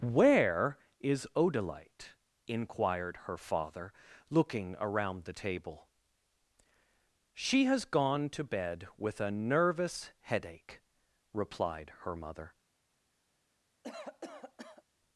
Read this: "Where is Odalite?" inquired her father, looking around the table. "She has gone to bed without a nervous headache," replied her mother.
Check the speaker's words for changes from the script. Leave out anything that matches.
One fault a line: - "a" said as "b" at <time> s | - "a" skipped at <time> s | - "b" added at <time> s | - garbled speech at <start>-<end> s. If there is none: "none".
- "without" said as "with" at 9.0 s